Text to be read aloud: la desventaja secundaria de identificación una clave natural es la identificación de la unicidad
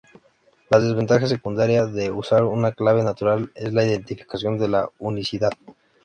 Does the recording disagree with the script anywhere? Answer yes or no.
yes